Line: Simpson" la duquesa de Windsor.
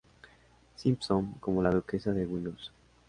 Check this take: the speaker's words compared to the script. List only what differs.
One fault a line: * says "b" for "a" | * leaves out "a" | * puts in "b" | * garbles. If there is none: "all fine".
* puts in "como"